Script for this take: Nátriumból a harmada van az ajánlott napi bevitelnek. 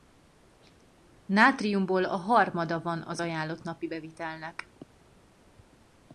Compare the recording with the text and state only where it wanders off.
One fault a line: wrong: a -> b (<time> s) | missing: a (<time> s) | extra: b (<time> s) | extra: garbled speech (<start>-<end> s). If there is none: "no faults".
no faults